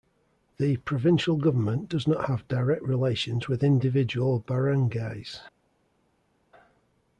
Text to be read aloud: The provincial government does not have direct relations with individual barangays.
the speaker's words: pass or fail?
pass